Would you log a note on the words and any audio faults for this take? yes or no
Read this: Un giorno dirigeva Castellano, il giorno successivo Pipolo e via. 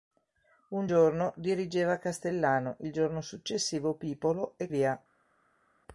no